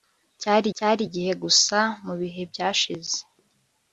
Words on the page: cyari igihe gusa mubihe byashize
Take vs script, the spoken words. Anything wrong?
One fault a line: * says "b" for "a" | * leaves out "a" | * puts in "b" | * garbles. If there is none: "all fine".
* puts in "cyari"